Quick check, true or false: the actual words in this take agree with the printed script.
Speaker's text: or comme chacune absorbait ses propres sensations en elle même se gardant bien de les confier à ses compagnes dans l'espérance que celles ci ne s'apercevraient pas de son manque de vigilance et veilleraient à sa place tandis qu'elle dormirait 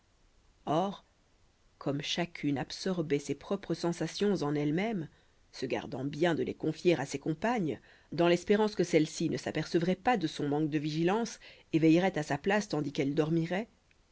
true